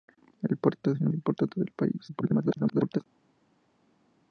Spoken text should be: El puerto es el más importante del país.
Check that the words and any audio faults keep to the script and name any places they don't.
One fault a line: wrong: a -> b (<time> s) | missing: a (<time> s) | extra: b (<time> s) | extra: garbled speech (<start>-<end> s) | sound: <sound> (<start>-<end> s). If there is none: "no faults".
missing: más (1.1 s)
extra: garbled speech (2.1-3.0 s)